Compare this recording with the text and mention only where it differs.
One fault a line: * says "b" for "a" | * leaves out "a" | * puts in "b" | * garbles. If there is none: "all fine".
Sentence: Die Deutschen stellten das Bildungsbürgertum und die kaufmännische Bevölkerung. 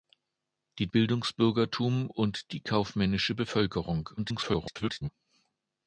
* leaves out "Deutschen stellten das"
* garbles